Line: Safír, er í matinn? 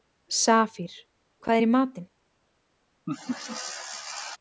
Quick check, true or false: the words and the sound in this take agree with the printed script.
false